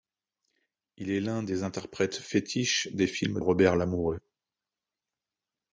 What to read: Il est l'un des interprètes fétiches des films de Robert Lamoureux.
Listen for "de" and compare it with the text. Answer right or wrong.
wrong